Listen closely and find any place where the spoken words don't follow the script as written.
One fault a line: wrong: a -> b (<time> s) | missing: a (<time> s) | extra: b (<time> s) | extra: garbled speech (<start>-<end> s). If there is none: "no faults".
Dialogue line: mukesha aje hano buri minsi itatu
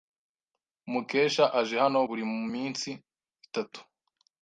no faults